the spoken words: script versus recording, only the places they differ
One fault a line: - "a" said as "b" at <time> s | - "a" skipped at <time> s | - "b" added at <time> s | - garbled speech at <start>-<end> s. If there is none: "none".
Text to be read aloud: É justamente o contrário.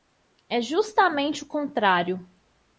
none